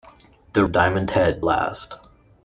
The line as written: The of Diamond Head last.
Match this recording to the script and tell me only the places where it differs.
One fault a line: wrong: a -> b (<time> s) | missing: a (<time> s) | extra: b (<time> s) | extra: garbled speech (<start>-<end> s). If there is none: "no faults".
no faults